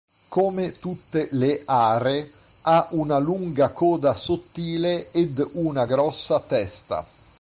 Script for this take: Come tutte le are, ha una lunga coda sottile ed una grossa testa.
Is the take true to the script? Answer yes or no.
yes